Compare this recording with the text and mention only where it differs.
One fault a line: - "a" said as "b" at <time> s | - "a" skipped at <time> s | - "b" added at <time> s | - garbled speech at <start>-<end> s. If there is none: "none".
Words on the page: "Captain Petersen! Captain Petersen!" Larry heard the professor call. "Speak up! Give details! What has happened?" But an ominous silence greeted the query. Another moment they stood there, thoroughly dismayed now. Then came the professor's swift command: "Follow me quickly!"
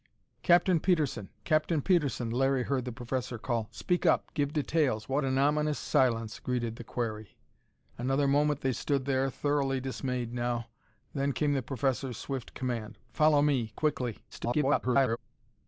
- "has happened But" skipped at 5.2 s
- garbled speech at 14.3-15.2 s